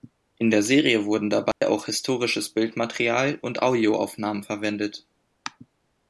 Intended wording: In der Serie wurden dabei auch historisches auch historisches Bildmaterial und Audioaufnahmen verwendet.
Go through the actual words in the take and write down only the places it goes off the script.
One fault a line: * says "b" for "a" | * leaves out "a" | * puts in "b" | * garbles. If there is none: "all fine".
* leaves out "auch historisches"